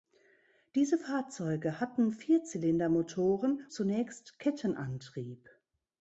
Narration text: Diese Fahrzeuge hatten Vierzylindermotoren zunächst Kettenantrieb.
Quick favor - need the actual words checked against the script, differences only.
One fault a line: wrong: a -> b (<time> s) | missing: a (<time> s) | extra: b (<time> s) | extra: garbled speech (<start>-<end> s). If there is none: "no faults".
no faults